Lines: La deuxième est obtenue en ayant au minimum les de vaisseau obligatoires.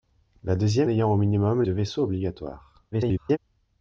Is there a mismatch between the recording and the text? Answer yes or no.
yes